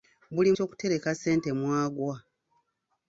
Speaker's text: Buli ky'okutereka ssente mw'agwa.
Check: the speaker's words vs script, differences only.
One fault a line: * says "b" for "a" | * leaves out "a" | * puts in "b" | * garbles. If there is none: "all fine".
all fine